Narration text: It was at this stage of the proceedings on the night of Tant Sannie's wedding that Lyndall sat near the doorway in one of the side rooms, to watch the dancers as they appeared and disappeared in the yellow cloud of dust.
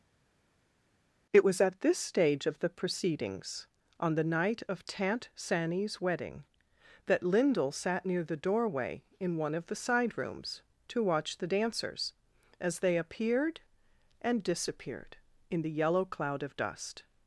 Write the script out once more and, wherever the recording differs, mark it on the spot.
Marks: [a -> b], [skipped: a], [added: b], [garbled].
It was at this stage of the proceedings on the night of Tant Sannie's wedding that Lyndall sat near the doorway in one of the side rooms, to watch the dancers as they appeared and disappeared in the yellow cloud of dust.